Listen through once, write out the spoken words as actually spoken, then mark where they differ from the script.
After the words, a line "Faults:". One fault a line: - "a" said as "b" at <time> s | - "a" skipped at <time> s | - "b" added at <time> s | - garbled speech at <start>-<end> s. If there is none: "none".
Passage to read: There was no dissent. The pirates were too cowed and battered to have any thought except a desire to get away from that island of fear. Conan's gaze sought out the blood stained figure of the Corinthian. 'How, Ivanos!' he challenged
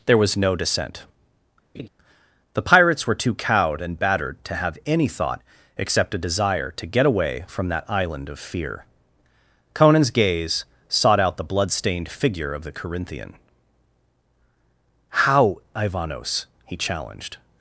There was no dissent. The pirates were too cowed and battered to have any thought except a desire to get away from that island of fear. Conan's gaze sought out the blood stained figure of the Corinthian. 'How, Ivanos!' he challenged
Faults:
none